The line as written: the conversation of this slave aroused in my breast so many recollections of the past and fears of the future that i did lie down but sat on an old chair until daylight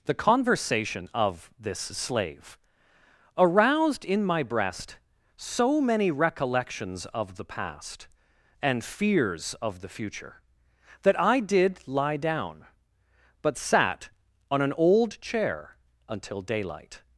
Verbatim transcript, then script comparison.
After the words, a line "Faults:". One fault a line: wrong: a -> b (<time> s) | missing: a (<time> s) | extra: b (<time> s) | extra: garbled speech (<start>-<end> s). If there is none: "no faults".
the conversation of this slave aroused in my breast so many recollections of the past and fears of the future that i did lie down but sat on an old chair until daylight
Faults:
no faults